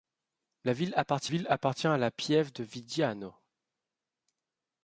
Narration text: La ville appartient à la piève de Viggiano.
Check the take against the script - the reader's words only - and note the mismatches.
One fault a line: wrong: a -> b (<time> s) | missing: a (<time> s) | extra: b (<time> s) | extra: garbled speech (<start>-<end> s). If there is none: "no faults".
extra: ville appartient (1.2 s)